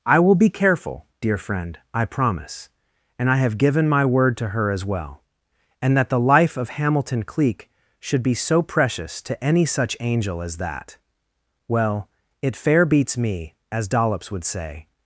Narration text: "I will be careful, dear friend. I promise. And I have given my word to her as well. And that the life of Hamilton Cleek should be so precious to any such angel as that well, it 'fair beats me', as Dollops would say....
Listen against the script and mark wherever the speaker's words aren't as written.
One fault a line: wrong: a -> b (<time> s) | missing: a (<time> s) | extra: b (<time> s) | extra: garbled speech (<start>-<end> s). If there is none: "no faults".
no faults